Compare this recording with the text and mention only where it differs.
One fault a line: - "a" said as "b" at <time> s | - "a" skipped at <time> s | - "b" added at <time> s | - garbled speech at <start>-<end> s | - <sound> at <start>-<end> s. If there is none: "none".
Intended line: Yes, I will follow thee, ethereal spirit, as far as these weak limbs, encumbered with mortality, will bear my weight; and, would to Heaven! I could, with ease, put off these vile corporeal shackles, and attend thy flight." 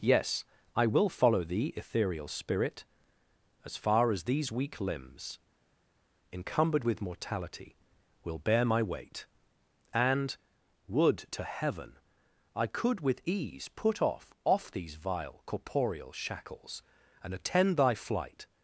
- "off" added at 14.4 s